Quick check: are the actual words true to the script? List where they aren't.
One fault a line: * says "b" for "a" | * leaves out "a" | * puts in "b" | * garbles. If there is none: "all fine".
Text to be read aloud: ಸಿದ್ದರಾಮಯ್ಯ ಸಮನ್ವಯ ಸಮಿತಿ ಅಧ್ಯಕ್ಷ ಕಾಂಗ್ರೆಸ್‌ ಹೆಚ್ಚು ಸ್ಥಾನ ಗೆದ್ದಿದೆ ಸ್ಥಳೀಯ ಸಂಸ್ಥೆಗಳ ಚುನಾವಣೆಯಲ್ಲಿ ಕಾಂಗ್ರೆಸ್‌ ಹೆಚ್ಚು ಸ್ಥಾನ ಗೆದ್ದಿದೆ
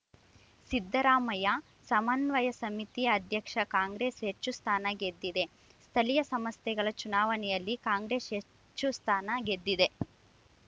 all fine